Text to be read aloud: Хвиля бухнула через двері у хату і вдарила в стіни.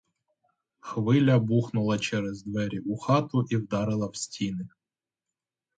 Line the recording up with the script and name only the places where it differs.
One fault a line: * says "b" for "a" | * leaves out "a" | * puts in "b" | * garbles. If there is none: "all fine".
all fine